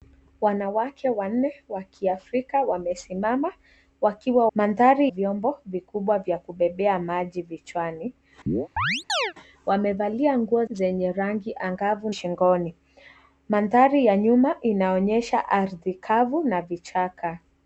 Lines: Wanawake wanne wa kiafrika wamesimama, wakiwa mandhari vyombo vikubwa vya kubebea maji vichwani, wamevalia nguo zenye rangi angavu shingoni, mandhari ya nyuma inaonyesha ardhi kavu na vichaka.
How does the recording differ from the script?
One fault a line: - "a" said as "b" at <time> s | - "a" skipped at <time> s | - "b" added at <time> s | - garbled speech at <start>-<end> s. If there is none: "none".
none